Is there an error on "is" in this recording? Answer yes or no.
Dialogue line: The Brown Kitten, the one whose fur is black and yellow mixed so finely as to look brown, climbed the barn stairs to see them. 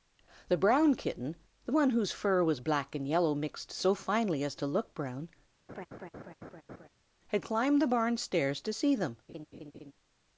yes